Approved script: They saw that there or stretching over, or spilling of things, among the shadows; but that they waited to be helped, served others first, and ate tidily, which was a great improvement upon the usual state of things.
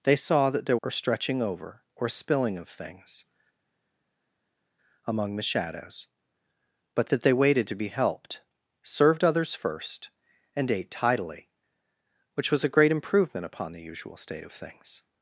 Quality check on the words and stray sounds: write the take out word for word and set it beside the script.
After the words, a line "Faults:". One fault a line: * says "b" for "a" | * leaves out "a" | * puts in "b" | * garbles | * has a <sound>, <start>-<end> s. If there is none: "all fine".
They saw that there or stretching over, or spilling of things, among the shadows; but that they waited to be helped, served others first, and ate tidily, which was a great improvement upon the usual state of things.
Faults:
all fine